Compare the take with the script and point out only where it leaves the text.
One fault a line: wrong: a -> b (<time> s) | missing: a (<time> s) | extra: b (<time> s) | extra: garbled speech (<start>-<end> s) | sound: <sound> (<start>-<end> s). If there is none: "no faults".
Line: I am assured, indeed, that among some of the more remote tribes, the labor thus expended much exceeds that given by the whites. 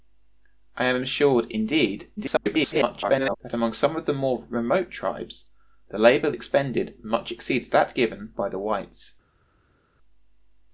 extra: garbled speech (2.2-3.4 s)
missing: thus (6.3 s)